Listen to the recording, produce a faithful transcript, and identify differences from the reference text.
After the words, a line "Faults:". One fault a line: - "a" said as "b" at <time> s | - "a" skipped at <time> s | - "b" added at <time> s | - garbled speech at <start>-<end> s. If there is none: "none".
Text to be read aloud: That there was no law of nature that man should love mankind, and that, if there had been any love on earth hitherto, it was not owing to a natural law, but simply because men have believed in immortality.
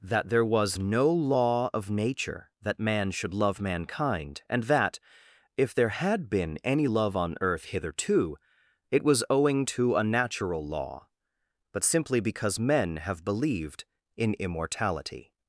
That there was no law of nature that man should love mankind, and that, if there had been any love on earth hitherto, it was owing to a natural law, but simply because men have believed in immortality.
Faults:
- "not" skipped at 9.2 s